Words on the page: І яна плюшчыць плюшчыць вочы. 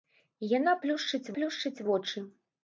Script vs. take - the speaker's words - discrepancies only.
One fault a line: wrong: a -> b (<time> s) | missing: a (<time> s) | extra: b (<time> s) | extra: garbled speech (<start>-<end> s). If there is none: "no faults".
no faults